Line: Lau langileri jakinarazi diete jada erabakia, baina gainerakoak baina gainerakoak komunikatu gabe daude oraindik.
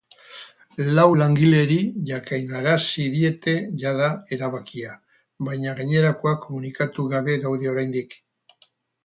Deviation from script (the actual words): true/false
true